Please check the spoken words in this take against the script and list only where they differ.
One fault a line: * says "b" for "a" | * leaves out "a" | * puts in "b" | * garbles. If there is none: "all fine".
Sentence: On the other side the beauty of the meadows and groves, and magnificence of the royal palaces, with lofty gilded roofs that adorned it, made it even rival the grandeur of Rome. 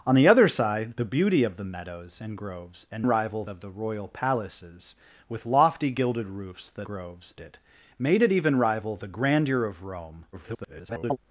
* says "rival" for "magnificence"
* says "groves" for "adorned"
* garbles